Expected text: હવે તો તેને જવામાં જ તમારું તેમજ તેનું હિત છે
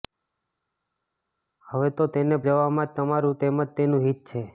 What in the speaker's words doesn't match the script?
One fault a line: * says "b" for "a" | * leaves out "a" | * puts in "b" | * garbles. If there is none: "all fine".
all fine